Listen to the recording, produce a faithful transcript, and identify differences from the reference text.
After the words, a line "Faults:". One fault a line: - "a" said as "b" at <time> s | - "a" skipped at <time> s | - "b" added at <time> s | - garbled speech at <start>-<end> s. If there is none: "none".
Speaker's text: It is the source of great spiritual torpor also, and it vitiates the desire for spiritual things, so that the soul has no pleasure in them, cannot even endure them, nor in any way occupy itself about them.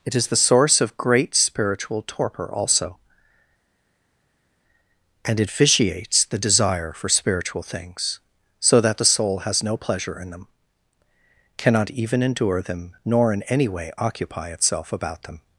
It is the source of great spiritual torpor also, and it vitiates the desire for spiritual things, so that the soul has no pleasure in them, cannot even endure them, nor in any way occupy itself about them.
Faults:
none